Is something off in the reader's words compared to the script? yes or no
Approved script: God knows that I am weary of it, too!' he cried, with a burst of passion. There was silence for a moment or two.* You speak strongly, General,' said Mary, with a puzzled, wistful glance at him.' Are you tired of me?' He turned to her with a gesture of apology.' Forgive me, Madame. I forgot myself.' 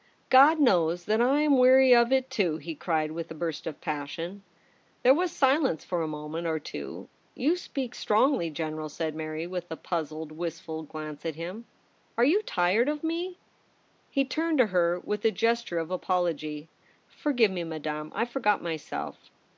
no